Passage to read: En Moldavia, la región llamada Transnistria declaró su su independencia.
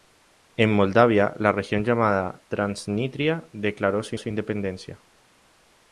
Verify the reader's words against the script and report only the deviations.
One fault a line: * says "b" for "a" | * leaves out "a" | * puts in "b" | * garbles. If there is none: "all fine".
all fine